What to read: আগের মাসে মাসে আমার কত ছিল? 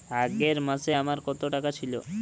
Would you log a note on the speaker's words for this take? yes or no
yes